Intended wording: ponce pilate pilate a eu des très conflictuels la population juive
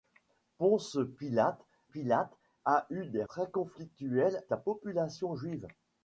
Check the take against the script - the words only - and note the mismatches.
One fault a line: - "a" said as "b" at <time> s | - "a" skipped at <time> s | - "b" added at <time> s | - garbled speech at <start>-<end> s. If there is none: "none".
none